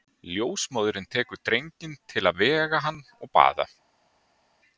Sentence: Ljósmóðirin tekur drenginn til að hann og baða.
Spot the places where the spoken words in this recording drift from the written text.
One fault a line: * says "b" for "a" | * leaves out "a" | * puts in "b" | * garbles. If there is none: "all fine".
* puts in "vega"